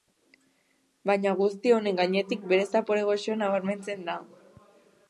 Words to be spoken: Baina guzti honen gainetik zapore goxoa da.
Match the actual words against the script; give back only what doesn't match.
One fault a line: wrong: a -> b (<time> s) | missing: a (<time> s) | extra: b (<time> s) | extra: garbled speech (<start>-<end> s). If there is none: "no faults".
extra: bere (2.5 s)
extra: nabarmentzen (3.5 s)